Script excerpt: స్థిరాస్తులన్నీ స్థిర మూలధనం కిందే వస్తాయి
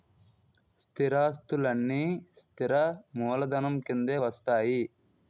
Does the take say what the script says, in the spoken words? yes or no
yes